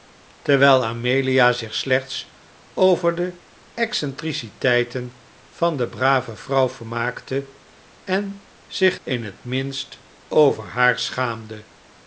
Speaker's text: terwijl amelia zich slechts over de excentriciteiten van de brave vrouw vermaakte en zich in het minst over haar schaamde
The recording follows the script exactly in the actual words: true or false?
true